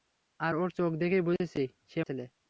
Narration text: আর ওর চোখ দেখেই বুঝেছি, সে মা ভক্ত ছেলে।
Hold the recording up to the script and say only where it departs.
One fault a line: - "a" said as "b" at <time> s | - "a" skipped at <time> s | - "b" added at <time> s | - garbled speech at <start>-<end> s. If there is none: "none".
- "মা ভক্ত" skipped at 2.0 s